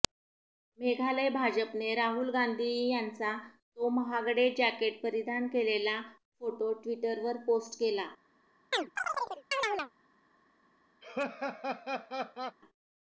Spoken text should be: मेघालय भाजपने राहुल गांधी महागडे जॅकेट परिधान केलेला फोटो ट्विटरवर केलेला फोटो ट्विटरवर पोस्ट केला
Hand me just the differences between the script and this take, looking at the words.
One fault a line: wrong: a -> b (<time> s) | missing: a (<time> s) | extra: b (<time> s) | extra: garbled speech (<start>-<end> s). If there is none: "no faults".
extra: यांचा तो (2.9 s)
missing: केलेला फोटो ट्विटरवर (7.4 s)